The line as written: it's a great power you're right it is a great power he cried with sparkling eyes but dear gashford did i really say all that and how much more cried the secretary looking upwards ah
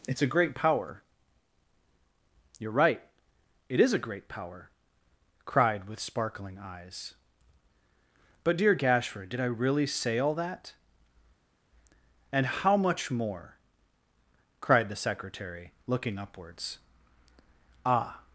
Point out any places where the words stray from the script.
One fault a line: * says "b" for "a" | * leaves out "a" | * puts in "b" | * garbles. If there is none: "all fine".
* leaves out "he"